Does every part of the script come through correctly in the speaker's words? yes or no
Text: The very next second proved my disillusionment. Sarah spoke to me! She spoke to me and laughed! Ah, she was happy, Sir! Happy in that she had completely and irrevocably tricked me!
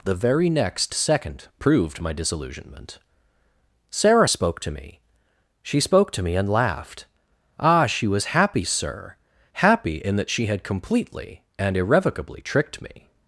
yes